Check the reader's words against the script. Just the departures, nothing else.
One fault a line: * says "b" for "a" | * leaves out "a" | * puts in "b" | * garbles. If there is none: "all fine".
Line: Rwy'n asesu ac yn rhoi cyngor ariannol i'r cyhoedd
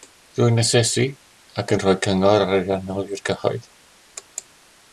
all fine